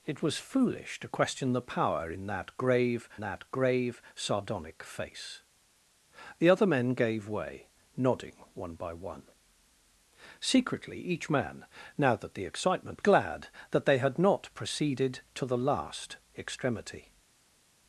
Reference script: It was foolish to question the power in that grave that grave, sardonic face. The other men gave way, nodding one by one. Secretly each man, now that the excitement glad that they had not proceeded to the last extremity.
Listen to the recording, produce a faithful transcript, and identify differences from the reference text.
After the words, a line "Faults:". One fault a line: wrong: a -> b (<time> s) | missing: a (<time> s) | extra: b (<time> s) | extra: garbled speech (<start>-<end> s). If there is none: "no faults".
It was foolish to question the power in that grave that grave, sardonic face. The other men gave way, nodding one by one. Secretly each man, now that the excitement glad that they had not proceeded to the last extremity.
Faults:
no faults